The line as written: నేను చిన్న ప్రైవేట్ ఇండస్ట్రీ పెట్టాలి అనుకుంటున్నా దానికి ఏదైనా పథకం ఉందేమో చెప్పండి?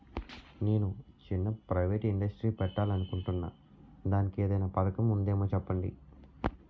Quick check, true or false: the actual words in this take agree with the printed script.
true